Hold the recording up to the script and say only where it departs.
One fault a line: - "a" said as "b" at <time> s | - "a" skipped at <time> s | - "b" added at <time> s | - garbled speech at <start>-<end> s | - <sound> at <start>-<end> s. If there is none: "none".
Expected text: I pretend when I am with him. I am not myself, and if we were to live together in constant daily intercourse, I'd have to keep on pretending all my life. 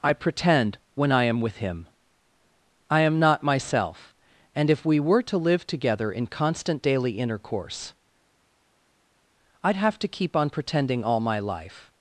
none